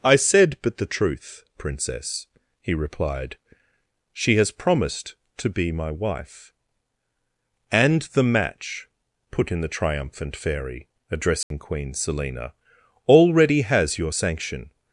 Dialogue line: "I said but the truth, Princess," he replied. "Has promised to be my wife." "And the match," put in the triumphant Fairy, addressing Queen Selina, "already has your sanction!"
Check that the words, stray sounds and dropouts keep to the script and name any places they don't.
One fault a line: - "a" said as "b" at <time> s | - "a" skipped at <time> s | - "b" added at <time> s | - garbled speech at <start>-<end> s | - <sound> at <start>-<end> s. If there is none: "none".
- "She" added at 4.1 s
- dropout at 11.4-11.5 s